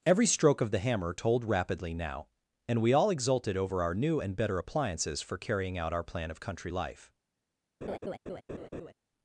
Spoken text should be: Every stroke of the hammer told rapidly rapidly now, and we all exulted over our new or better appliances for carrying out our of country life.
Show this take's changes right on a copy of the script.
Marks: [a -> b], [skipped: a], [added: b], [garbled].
Every stroke of the hammer told rapidly [skipped: rapidly] now, and we all exulted over our new [or -> and] better appliances for carrying out our [added: plan] of country life.